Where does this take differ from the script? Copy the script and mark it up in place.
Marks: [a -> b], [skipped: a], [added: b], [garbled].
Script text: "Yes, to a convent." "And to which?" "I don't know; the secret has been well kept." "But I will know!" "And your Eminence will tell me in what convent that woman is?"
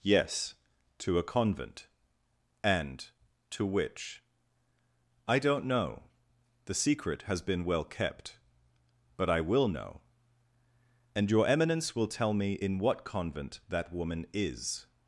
"Yes, to a convent." "And to which?" "I don't know; the secret has been well kept." "But I will know!" "And your Eminence will tell me in what convent that woman is?"